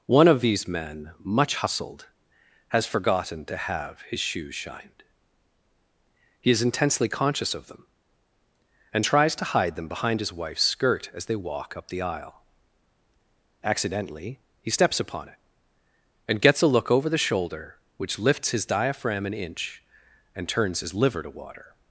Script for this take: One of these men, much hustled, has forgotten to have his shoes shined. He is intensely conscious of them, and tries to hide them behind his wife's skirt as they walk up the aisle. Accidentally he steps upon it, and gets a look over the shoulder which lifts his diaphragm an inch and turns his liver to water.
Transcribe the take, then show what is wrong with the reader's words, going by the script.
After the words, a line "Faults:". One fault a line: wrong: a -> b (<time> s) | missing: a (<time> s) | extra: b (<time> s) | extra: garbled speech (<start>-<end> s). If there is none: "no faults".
One of these men, much hustled, has forgotten to have his shoes shined. He is intensely conscious of them, and tries to hide them behind his wife's skirt as they walk up the aisle. Accidentally he steps upon it, and gets a look over the shoulder which lifts his diaphragm an inch and turns his liver to water.
Faults:
no faults